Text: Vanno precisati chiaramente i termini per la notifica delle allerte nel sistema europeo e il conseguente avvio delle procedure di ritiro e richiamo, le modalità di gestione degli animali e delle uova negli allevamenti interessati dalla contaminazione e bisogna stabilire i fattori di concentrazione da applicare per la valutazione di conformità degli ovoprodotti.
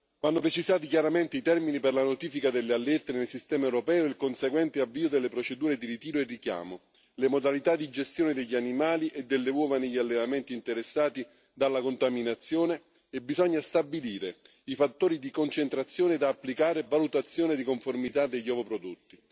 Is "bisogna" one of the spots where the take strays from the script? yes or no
no